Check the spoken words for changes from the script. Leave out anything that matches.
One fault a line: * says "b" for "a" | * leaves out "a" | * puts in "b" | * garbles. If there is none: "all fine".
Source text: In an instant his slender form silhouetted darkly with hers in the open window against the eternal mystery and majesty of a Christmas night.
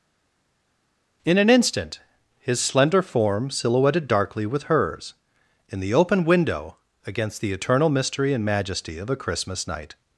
all fine